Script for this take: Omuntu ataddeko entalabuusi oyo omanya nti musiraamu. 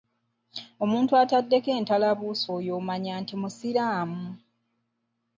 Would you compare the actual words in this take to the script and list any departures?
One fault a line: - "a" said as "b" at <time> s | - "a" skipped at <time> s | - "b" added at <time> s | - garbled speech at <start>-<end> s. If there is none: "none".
none